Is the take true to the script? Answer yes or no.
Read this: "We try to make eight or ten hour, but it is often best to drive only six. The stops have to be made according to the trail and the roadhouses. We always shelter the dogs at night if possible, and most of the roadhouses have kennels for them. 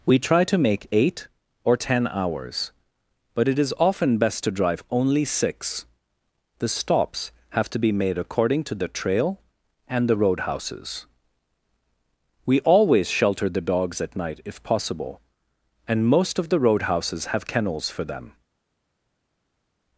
no